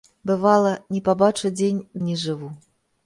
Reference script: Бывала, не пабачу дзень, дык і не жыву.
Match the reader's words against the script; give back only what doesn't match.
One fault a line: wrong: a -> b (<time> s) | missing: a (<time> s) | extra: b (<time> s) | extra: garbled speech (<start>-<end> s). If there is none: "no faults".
missing: дык (1.8 s)